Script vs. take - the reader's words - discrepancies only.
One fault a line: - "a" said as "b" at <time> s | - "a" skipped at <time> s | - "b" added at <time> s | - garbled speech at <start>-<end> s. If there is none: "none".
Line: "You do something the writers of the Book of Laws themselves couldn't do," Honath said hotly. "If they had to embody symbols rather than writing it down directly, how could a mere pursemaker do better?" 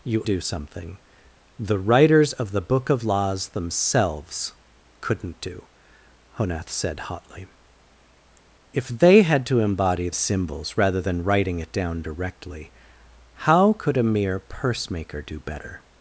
none